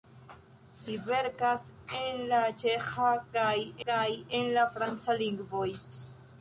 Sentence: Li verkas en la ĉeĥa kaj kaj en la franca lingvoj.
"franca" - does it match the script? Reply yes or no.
yes